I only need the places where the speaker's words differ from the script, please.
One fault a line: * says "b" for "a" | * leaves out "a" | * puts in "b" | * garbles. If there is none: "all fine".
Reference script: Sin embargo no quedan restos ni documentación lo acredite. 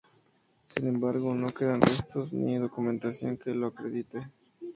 * puts in "que"